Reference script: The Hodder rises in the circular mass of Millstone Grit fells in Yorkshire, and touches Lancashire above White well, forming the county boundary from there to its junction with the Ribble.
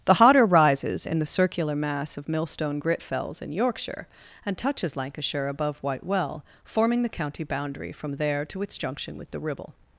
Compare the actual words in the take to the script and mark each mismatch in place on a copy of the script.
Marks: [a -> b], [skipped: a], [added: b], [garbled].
The Hodder rises in the circular mass of Millstone Grit fells in Yorkshire, and touches Lancashire above White well, forming the county boundary from there to its junction with the Ribble.